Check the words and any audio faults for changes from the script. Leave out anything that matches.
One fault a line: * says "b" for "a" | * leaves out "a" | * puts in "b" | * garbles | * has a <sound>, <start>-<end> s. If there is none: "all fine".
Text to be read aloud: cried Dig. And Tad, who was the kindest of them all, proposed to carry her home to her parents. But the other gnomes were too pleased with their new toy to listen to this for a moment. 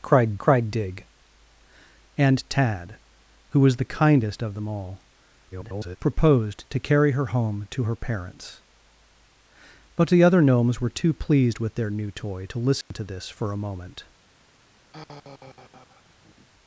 * puts in "cried"
* garbles
* has a dropout, 12.8-12.9 s
* has a sigh, 14.9-16.5 s